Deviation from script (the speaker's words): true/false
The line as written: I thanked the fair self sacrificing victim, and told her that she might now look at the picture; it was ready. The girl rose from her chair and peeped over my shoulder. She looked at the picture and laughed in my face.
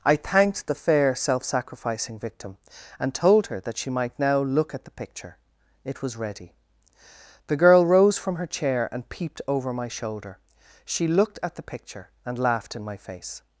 false